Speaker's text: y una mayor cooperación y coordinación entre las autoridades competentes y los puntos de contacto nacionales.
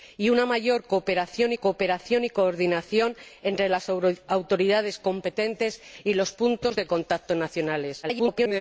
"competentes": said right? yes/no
yes